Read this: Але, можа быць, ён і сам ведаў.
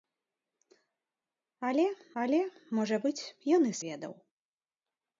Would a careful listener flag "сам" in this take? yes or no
yes